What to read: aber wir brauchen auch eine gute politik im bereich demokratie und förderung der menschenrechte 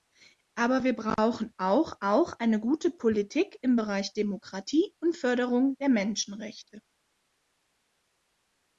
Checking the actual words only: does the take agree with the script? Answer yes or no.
no